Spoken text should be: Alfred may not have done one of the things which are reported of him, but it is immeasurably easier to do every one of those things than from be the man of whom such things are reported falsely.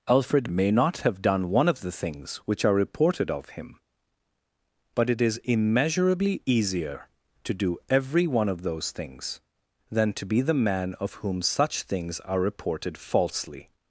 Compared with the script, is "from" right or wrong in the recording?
wrong